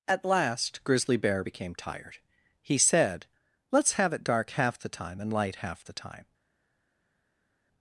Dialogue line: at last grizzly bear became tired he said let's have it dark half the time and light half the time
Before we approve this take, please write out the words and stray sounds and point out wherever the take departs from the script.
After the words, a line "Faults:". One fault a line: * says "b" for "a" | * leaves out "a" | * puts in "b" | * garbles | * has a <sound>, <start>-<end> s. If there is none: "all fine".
at last grizzly bear became tired he said let's have it dark half the time and light half the time
Faults:
all fine